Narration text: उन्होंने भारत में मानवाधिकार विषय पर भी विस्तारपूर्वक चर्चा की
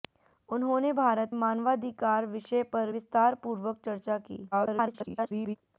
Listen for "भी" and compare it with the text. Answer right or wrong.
wrong